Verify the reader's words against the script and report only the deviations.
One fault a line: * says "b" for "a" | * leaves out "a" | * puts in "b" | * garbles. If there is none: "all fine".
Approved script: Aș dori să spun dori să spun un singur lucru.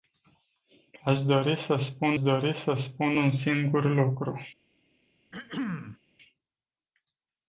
all fine